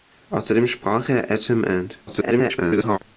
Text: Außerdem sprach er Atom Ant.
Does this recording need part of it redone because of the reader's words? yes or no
yes